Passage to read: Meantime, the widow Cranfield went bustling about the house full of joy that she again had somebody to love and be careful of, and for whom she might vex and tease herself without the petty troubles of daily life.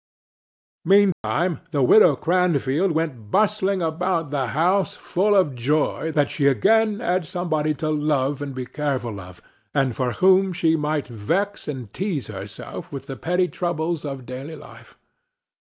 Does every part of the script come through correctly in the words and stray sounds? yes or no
no